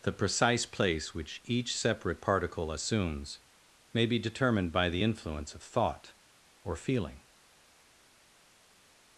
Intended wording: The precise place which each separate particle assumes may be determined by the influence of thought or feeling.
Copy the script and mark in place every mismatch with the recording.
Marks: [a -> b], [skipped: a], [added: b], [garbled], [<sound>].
The precise place which each separate particle assumes may be determined by the influence of thought or feeling.